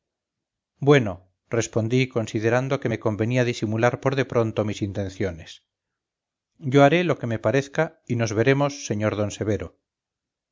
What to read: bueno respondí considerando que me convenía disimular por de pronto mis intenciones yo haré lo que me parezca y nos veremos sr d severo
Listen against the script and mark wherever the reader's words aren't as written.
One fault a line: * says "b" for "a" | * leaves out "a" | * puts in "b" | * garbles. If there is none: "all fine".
all fine